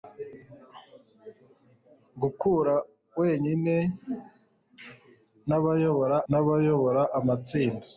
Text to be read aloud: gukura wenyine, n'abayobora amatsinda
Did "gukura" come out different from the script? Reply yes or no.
no